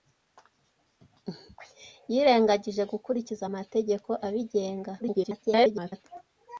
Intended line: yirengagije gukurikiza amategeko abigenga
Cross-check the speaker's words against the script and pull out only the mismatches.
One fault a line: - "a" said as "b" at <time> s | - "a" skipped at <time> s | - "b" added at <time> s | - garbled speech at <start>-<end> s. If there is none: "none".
- garbled speech at 5.0-6.1 s